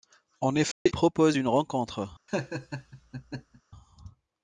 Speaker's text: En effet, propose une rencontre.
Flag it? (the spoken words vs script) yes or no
no